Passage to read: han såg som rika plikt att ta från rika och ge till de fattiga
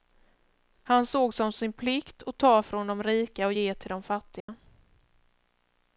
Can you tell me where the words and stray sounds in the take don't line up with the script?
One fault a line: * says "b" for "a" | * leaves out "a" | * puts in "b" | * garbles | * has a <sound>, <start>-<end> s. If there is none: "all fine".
* says "sin" for "rika"
* puts in "de"
* has a dropout, 4.4-4.5 s